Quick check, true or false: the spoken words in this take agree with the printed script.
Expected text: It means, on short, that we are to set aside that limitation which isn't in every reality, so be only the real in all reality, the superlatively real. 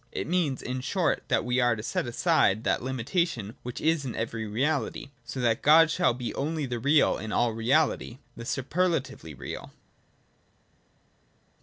false